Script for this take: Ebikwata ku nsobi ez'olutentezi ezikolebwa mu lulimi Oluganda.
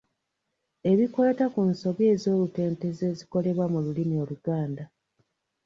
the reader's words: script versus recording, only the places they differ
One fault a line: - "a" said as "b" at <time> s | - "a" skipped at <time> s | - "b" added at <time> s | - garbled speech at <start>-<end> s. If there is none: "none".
none